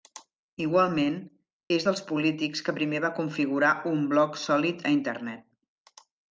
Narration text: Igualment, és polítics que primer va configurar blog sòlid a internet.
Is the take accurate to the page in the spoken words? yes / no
no